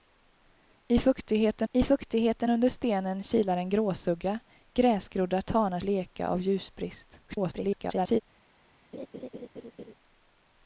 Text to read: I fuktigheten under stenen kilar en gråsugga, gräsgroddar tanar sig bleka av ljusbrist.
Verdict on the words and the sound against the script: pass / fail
fail